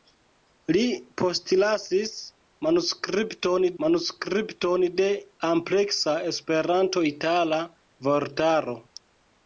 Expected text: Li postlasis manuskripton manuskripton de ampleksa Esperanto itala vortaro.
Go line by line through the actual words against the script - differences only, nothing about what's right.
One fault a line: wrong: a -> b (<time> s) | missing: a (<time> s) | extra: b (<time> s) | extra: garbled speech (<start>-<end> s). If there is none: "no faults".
no faults